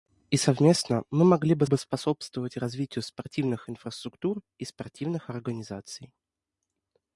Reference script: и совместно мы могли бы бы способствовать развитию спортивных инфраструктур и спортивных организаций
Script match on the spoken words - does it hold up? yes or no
yes